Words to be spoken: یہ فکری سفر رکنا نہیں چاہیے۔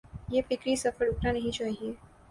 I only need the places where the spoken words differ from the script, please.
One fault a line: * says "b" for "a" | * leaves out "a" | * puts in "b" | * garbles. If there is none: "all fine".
all fine